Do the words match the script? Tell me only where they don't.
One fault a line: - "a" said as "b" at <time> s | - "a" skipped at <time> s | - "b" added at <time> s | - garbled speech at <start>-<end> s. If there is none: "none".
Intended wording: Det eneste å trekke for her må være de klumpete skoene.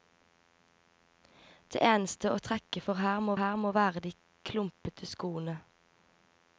- "her må" added at 3.4 s